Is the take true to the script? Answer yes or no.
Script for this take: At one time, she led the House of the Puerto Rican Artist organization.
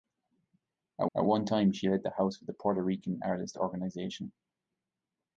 no